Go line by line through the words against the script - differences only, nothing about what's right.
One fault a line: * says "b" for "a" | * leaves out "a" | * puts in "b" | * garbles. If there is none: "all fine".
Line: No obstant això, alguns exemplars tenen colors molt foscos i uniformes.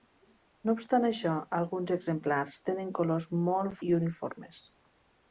* leaves out "foscos"